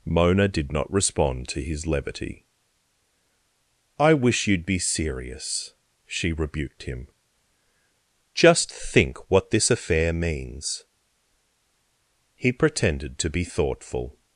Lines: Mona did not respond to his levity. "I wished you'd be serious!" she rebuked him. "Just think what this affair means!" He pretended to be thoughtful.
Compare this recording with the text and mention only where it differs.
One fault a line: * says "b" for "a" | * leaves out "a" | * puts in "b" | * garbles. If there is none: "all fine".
* says "wish" for "wished"